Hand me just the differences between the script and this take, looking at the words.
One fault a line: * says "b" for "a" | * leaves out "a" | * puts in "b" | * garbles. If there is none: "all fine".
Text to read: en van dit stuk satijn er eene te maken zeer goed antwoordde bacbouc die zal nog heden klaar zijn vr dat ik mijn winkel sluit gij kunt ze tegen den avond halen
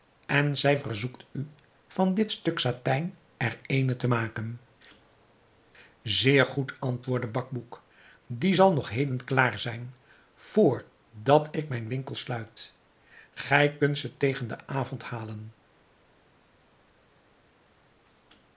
* puts in "zij verzoekt u"